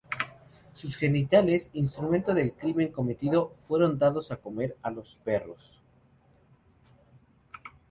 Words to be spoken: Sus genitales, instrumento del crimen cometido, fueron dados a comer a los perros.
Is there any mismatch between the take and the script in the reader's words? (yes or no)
no